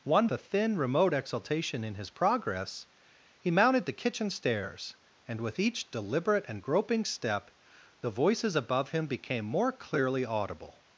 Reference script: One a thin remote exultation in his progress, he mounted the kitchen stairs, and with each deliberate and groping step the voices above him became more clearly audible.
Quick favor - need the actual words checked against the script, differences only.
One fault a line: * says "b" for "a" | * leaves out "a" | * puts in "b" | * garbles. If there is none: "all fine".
all fine